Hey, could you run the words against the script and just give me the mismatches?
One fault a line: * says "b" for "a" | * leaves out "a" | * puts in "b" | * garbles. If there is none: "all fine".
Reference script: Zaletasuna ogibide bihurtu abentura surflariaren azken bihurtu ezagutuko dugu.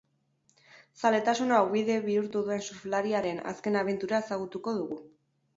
* says "duen" for "abentura"
* says "abentura" for "bihurtu"